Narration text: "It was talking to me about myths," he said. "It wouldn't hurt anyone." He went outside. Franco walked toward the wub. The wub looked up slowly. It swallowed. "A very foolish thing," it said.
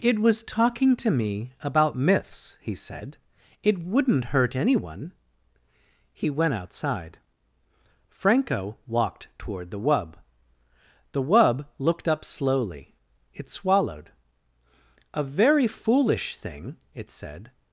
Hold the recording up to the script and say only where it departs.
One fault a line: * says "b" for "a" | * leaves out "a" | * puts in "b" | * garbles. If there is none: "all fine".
all fine